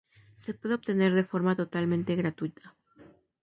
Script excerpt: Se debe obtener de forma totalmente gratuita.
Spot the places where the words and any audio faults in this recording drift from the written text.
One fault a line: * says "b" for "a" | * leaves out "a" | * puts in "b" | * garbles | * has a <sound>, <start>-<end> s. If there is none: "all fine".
* says "puede" for "debe"